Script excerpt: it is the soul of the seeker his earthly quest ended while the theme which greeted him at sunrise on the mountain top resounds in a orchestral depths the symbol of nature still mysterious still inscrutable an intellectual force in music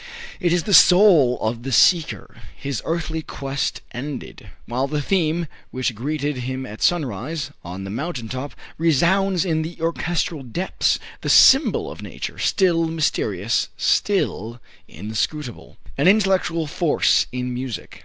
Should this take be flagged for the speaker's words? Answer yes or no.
yes